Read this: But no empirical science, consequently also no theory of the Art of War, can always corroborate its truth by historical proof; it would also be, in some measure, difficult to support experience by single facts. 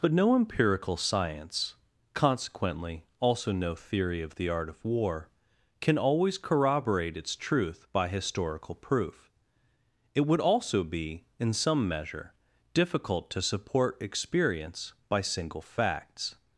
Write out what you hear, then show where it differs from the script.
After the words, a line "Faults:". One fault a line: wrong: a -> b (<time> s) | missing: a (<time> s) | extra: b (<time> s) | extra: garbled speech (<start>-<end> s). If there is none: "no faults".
But no empirical science, consequently also no theory of the Art of War, can always corroborate its truth by historical proof; it would also be, in some measure, difficult to support experience by single facts.
Faults:
no faults